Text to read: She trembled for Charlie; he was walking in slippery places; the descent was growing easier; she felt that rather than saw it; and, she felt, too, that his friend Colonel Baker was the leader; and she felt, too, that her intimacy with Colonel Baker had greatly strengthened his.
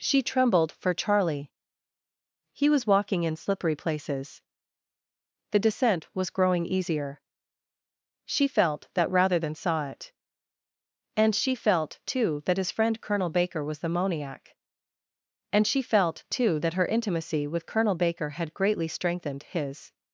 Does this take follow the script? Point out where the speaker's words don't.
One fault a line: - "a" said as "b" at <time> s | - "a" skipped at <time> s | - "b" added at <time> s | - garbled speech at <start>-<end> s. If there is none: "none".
- "leader" said as "moniac" at 13.9 s